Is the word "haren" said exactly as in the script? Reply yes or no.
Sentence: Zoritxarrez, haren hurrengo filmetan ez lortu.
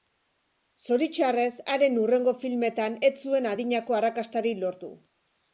yes